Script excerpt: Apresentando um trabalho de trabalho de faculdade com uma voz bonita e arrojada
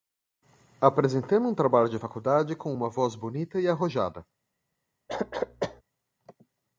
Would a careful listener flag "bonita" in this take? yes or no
no